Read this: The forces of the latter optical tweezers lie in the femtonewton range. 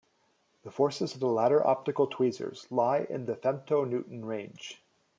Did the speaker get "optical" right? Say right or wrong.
right